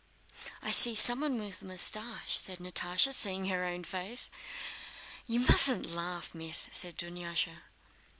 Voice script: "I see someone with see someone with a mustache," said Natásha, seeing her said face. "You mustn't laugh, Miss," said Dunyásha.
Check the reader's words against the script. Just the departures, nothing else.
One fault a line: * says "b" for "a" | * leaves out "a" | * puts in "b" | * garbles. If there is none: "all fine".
* leaves out "see someone with"
* says "own" for "said"